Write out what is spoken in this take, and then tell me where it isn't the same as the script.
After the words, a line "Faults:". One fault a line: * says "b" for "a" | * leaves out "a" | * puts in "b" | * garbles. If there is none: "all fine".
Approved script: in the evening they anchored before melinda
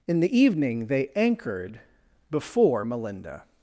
in the evening they anchored before melinda
Faults:
all fine